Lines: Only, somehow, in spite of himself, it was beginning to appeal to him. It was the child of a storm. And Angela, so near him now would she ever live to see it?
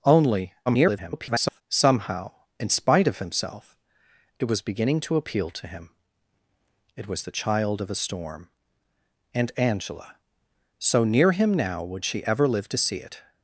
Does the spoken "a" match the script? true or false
true